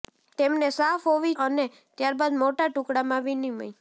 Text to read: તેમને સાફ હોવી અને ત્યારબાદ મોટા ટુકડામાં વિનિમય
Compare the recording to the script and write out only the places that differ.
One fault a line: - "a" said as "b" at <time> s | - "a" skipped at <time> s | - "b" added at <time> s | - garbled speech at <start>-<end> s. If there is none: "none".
none